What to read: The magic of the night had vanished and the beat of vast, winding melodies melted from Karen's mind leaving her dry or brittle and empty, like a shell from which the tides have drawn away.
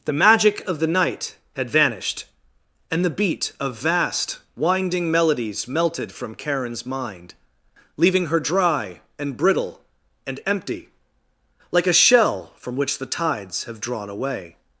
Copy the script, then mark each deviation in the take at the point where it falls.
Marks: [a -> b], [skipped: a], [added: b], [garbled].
The magic of the night had vanished and the beat of vast, winding melodies melted from Karen's mind leaving her dry [or -> and] brittle and empty, like a shell from which the tides have drawn away.